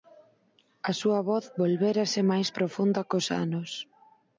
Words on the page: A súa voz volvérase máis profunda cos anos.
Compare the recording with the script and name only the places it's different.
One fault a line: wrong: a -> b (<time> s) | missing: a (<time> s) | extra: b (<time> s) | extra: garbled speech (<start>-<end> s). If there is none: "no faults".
no faults